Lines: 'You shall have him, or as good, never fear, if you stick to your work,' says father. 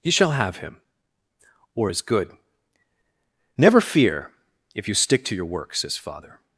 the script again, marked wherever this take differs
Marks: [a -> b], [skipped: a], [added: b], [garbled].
'You shall have him, or as good, never fear, if you stick to your work,' says father.